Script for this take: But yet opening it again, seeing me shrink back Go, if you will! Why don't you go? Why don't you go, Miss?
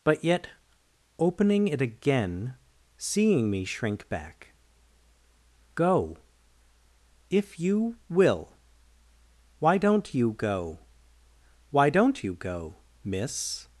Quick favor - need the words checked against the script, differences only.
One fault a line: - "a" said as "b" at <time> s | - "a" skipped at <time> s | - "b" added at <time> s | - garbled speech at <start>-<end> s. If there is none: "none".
none